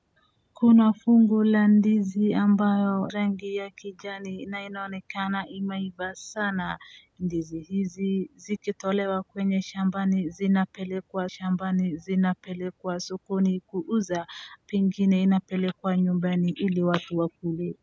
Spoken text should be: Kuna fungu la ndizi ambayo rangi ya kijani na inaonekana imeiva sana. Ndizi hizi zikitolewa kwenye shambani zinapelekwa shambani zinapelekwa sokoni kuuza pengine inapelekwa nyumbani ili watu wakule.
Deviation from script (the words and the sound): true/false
false